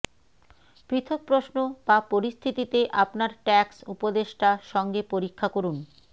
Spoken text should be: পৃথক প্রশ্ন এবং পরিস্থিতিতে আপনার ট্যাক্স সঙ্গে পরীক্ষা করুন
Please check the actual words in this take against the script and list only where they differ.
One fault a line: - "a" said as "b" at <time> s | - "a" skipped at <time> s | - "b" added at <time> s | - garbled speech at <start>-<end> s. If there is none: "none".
- "এবং" said as "বা" at 1.9 s
- "উপদেষ্টা" added at 3.9 s